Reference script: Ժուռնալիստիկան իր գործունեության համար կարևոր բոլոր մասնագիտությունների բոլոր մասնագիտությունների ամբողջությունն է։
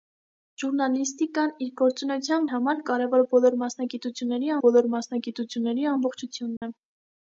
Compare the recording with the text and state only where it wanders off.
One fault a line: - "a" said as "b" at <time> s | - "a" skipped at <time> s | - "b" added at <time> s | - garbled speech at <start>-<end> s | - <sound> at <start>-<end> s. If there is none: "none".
- dropout at 6.6-6.6 s